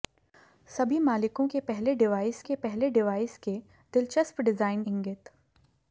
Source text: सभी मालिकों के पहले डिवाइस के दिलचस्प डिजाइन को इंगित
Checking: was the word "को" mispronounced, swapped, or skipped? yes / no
yes